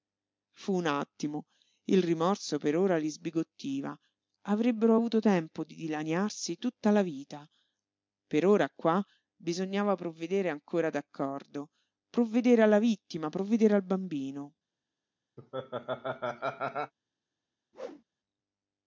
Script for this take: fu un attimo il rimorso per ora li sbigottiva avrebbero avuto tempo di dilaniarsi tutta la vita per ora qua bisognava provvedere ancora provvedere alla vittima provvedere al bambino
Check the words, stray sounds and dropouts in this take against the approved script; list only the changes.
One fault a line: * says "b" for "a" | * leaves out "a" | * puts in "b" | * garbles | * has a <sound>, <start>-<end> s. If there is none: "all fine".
* puts in "d'accordo"
* has a laugh, 15.4-16.9 s
* has a whoosh, 17.7-18.0 s